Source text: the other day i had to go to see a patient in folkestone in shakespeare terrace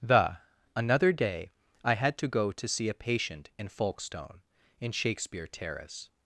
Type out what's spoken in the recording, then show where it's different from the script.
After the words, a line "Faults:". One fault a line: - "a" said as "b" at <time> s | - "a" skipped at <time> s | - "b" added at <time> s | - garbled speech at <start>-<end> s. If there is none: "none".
the another day i had to go to see a patient in folkestone in shakespeare terrace
Faults:
- "other" said as "another" at 0.8 s